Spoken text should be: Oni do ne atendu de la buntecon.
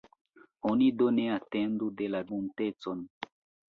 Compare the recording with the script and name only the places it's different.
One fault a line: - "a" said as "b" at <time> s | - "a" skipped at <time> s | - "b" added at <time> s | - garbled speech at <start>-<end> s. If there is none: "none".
none